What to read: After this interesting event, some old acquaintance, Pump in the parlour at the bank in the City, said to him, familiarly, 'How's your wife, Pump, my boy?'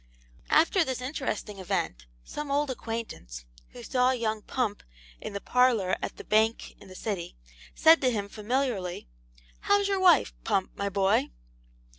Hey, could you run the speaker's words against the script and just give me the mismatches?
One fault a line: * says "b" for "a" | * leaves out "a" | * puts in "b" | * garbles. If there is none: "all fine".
* puts in "who saw young"